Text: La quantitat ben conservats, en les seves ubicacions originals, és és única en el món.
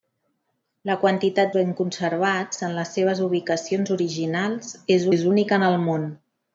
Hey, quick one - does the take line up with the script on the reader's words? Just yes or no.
yes